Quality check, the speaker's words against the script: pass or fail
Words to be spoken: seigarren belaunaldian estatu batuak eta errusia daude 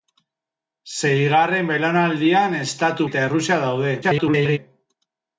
fail